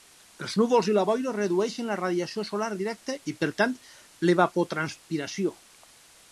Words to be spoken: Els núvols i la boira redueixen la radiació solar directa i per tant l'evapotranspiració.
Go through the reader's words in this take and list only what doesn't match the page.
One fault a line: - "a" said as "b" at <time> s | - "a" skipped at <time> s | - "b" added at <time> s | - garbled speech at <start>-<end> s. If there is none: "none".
none